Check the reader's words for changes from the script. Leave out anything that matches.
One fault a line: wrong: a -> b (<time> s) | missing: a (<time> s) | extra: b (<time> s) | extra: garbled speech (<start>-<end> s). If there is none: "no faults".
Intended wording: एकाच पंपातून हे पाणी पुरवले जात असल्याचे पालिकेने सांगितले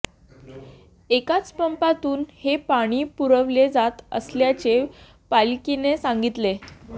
no faults